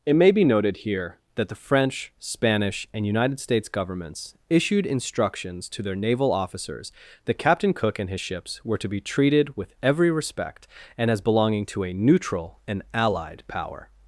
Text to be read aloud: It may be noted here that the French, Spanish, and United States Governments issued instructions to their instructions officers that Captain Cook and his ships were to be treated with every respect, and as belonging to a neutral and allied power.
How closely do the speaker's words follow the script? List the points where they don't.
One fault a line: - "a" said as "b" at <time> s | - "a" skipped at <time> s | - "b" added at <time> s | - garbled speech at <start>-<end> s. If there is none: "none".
- "instructions" said as "naval" at 6.0 s